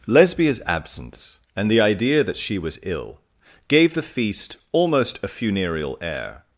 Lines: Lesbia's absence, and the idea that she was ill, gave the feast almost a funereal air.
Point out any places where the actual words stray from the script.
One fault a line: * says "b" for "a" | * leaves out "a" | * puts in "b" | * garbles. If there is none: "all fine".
all fine